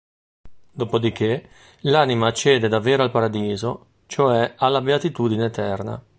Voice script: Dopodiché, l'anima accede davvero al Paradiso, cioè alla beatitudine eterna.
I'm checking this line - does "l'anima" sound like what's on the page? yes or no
yes